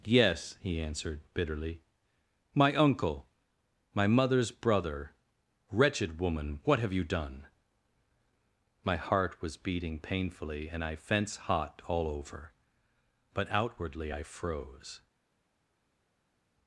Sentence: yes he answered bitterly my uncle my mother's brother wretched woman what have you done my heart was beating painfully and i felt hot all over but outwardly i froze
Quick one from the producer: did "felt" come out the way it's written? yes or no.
no